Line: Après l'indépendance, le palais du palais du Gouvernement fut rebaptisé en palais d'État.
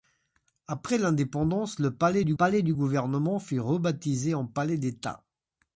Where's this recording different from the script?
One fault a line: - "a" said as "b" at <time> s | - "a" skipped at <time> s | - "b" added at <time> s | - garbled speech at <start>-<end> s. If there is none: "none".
none